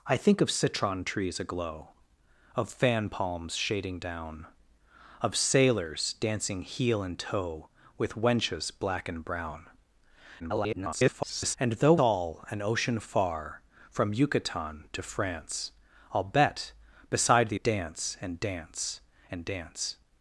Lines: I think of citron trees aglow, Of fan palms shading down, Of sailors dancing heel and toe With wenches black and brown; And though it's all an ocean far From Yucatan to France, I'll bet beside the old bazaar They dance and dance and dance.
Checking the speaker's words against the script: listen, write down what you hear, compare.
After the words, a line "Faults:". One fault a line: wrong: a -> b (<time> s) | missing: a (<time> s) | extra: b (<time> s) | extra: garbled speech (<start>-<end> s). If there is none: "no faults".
I think of citron trees aglow, Of fan palms shading down, Of sailors dancing heel and toe With wenches black and brown; [garbled] And though all an ocean far From Yucatan to France, I'll bet beside the dance and dance and dance.
Faults:
extra: garbled speech (10.4-11.6 s)
missing: it's (12.0 s)
missing: old bazaar They (17.6 s)